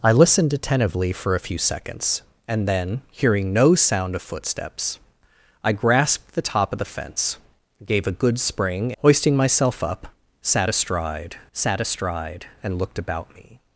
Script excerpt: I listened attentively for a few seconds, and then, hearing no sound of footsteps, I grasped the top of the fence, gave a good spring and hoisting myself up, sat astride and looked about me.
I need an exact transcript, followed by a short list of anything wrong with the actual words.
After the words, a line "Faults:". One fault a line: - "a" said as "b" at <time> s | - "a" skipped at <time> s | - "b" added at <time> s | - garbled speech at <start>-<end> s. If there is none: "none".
I listened attentively for a few seconds, and then, hearing no sound of footsteps, I grasped the top of the fence, gave a good spring hoisting myself up, sat astride sat astride and looked about me.
Faults:
- "and" skipped at 8.9 s
- "sat astride" added at 11.5 s